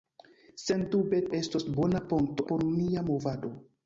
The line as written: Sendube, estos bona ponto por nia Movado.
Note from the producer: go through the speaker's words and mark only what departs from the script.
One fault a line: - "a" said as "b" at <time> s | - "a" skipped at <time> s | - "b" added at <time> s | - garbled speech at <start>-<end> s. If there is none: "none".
none